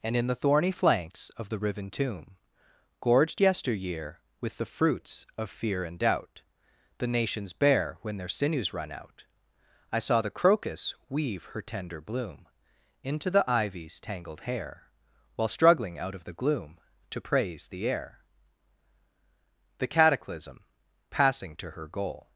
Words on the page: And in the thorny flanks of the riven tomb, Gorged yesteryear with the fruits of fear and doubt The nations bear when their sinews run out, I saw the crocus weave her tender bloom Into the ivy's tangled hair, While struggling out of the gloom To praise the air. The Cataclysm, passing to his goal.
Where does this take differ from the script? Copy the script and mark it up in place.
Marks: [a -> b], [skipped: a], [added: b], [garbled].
And in the thorny flanks of the riven tomb, Gorged yesteryear with the fruits of fear and doubt The nations bear when their sinews run out, I saw the crocus weave her tender bloom Into the ivy's tangled hair, While struggling out of the gloom To praise the air. The Cataclysm, passing to [his -> her] goal.